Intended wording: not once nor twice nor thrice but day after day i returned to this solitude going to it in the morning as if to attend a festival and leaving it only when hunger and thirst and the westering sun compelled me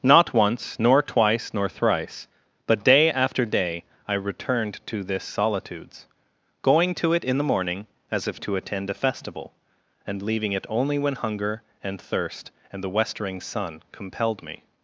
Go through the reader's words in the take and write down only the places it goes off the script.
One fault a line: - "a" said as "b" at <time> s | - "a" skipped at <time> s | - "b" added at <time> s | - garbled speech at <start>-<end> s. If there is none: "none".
- "solitude" said as "solitudes" at 5.2 s